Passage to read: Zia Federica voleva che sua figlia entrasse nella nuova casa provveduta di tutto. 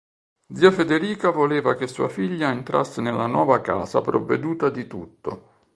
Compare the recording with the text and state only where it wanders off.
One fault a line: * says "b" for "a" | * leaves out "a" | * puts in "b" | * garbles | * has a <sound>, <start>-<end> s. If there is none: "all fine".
all fine